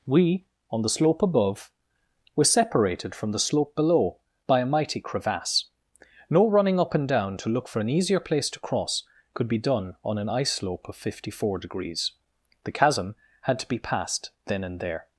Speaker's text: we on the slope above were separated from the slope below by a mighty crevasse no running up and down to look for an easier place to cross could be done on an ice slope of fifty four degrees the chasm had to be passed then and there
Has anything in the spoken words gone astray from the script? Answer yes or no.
no